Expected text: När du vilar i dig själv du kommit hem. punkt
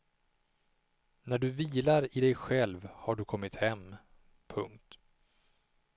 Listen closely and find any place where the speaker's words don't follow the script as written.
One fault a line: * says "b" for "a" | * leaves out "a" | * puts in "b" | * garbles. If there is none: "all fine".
* puts in "har"